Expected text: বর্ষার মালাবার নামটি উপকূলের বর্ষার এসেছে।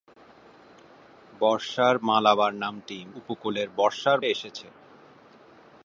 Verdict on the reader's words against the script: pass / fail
pass